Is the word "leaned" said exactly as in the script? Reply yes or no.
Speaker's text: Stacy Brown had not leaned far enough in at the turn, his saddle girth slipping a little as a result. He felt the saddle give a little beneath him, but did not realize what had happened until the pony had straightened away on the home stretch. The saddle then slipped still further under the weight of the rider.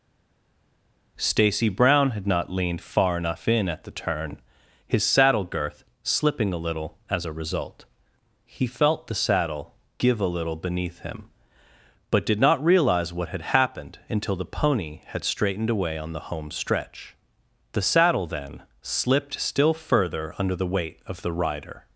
yes